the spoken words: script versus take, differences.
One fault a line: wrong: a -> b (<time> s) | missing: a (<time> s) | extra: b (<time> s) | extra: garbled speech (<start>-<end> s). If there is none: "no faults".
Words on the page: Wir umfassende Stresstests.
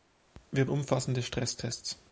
no faults